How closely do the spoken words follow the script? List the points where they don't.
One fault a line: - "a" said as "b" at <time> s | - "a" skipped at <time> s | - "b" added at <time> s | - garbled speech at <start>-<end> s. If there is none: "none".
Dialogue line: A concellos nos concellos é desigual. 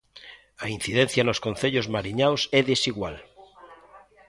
- "concellos" said as "incidencia" at 0.8 s
- "mariñaos" added at 1.9 s